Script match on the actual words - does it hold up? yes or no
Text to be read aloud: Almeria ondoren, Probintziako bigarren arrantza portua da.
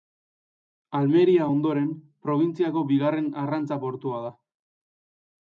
yes